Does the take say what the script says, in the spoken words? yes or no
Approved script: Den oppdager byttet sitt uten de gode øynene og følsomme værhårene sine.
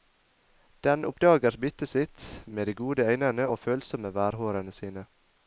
no